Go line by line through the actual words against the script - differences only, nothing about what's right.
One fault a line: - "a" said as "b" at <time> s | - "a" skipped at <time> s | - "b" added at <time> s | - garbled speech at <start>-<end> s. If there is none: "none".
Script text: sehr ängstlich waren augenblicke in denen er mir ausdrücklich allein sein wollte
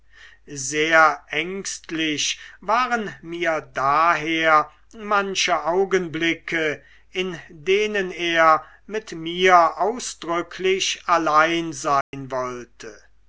- "mir daher manche" added at 3.2 s
- "mit" added at 8.9 s